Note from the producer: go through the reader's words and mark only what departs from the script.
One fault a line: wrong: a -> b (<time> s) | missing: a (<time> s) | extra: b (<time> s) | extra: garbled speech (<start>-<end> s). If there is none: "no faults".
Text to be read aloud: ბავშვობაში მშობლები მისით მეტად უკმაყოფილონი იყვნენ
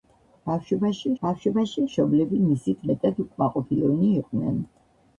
extra: ბავშვობაში (1.2 s)